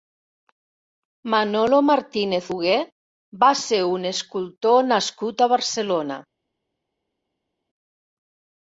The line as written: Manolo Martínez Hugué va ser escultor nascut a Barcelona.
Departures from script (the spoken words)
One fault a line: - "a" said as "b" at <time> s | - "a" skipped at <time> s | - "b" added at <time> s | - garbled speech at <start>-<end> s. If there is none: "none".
- "un" added at 3.9 s